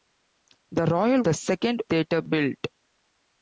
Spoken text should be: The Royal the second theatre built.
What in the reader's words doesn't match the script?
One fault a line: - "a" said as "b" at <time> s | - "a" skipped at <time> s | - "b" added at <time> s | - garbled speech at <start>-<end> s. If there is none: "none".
none